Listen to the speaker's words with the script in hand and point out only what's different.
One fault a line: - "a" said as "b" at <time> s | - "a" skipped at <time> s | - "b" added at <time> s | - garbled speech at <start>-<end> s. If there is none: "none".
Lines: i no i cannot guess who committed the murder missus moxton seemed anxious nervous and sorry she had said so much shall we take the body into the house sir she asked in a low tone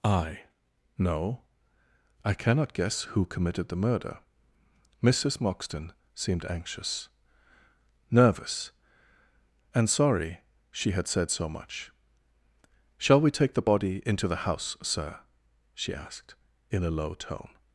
none